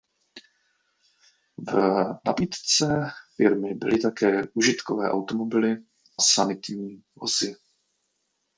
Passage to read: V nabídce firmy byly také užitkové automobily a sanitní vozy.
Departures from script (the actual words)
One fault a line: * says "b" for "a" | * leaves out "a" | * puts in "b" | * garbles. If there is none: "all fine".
* leaves out "a"